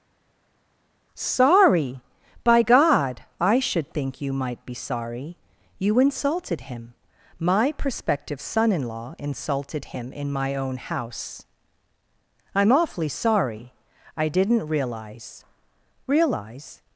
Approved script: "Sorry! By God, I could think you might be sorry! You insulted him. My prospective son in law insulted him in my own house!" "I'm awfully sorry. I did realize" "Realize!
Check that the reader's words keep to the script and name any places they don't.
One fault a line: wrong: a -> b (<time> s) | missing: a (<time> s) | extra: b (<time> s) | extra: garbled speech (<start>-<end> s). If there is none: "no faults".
wrong: could -> should (3.6 s)
wrong: did -> didn't (14.3 s)